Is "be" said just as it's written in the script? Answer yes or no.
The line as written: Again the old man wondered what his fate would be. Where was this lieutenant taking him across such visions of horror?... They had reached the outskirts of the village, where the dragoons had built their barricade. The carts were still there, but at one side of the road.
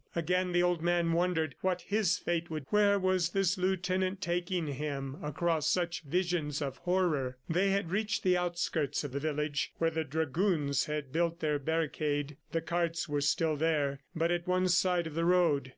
no